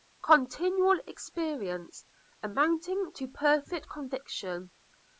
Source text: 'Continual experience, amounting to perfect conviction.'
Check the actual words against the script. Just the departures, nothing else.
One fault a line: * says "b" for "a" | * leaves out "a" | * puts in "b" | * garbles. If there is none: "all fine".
all fine